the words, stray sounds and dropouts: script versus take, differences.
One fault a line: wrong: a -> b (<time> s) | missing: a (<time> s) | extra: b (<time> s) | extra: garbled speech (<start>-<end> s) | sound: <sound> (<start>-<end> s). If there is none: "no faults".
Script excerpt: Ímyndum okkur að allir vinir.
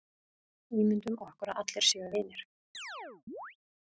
extra: séu (1.9 s)
sound: chirp (2.7-3.6 s)